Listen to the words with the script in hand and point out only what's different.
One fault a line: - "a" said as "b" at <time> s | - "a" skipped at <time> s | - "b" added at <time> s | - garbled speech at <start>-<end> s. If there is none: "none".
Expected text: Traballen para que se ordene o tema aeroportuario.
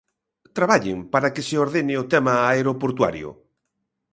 none